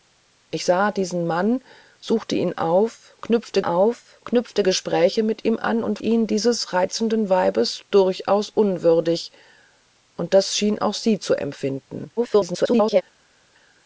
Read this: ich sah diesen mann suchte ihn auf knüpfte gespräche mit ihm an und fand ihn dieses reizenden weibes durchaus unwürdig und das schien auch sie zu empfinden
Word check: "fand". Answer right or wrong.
wrong